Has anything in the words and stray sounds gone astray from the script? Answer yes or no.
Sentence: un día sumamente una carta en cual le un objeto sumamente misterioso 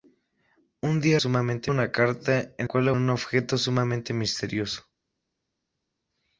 no